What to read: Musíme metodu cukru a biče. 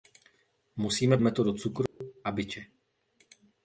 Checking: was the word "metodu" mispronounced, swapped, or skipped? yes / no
no